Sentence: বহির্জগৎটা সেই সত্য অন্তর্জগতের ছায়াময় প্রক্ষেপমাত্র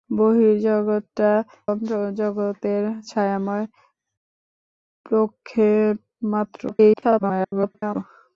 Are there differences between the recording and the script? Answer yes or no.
yes